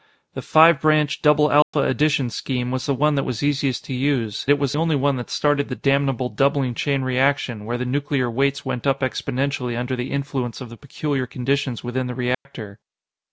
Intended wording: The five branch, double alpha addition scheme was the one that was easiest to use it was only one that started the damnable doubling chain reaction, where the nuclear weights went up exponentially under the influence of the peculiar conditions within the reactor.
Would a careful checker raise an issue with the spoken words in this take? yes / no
no